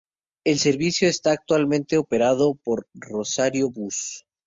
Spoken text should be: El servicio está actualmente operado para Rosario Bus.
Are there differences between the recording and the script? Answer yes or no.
yes